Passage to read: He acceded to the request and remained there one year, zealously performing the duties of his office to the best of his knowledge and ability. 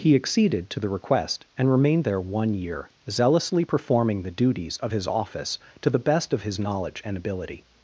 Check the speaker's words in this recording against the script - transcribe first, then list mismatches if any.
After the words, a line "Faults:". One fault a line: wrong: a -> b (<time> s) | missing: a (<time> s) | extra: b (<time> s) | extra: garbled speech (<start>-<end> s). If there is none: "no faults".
He acceded to the request and remained there one year, zealously performing the duties of his office to the best of his knowledge and ability.
Faults:
no faults